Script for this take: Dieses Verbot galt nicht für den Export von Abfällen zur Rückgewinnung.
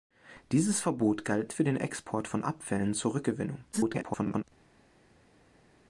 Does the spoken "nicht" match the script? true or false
false